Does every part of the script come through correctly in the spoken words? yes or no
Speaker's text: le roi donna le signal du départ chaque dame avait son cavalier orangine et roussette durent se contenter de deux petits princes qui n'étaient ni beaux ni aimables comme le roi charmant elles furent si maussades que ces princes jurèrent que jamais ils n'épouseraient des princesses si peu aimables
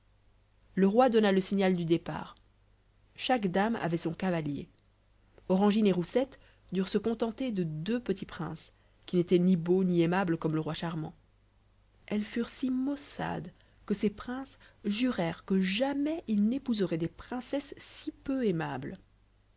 yes